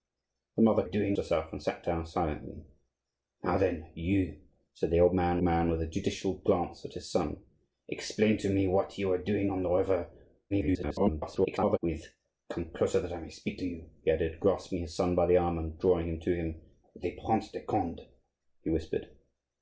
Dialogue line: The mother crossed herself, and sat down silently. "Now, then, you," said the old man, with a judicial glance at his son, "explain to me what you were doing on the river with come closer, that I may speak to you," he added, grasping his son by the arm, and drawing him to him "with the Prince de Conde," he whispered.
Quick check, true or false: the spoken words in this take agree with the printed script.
false